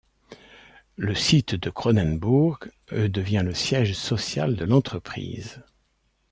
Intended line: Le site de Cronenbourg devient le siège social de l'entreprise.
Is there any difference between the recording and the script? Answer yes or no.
no